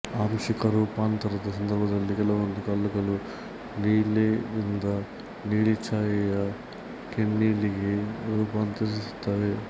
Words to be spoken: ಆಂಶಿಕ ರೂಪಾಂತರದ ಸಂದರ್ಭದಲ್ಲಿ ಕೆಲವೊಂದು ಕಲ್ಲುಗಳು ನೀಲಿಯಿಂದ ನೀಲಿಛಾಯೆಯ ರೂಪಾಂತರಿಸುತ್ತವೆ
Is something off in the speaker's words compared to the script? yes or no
yes